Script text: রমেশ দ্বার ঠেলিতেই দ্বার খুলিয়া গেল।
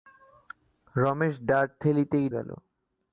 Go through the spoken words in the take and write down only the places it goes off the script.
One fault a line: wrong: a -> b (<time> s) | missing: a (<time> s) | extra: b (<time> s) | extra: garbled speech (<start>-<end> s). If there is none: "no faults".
missing: দ্বার খুলিয়া (2.3 s)